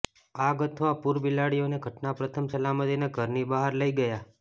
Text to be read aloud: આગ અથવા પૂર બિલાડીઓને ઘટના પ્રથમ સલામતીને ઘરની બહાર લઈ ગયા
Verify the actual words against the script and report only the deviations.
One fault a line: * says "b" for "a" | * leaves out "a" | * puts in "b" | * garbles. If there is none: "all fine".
all fine